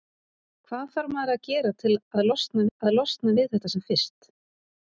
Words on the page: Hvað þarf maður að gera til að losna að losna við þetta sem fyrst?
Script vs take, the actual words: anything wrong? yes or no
no